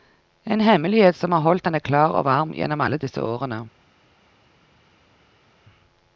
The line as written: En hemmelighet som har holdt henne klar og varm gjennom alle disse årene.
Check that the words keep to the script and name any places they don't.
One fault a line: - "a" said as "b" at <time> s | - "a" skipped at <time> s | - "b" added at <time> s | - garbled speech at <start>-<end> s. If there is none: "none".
none